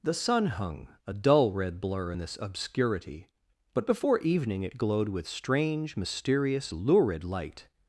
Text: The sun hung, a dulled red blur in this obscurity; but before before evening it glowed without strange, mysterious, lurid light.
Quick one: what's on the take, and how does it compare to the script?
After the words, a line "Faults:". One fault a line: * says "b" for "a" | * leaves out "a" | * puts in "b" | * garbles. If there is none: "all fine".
The sun hung, a dull red blur in this obscurity; but before evening it glowed with strange, mysterious, lurid light.
Faults:
* says "dull" for "dulled"
* leaves out "before"
* says "with" for "without"